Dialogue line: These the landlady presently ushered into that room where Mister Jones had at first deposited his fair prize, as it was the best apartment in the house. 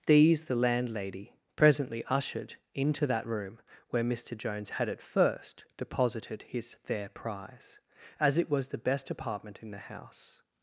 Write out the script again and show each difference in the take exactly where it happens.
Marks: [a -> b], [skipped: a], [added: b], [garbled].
These the landlady presently ushered into that room where Mister Jones had at first deposited his fair prize, as it was the best apartment in the house.